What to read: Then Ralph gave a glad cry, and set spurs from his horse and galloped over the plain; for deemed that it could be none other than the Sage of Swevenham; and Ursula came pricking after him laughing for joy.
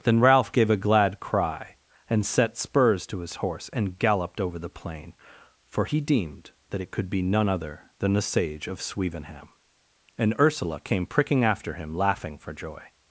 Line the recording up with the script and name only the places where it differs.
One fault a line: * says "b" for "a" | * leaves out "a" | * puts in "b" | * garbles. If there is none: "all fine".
* says "to" for "from"
* puts in "he"